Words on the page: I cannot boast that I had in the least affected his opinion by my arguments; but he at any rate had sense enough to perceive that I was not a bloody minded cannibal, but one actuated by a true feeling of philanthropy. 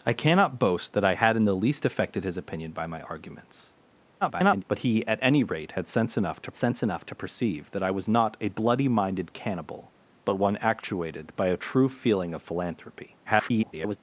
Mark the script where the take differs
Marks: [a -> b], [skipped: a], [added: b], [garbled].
I cannot boast that I had in the least affected his opinion by my arguments; [garbled] but he at any rate had sense enough to [added: sense enough to] perceive that I was not a bloody minded cannibal, but one actuated by a true feeling of philanthropy. [garbled]